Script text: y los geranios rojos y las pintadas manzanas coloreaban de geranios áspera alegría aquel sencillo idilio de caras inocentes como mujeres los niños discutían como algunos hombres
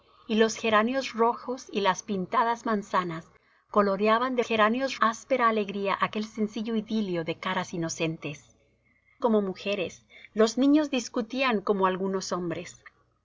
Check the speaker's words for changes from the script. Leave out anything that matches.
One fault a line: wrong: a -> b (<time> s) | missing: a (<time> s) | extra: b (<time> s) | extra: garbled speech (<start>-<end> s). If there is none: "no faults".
no faults